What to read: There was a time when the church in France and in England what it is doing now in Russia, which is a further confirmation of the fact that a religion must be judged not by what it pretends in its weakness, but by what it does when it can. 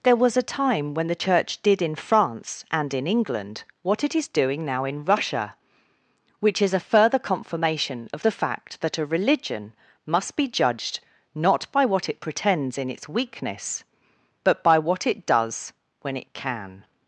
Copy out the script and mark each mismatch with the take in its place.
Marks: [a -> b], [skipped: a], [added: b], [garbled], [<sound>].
There was a time when the church [added: did] in France and in England what it is doing now in Russia, which is a further confirmation of the fact that a religion must be judged not by what it pretends in its weakness, but by what it does when it can.